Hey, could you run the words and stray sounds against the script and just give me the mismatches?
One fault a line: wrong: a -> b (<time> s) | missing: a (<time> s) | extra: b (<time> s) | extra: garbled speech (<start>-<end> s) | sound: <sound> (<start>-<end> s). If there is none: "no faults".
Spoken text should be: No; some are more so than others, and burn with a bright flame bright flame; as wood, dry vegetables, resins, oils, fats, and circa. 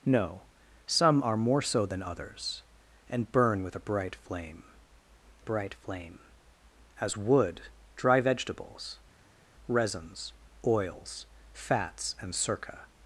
no faults